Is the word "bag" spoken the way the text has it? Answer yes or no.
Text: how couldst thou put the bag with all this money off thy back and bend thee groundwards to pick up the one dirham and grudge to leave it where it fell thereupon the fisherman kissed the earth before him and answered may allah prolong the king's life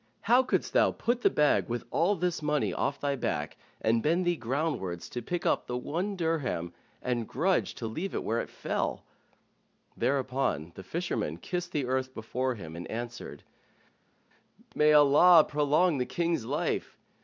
yes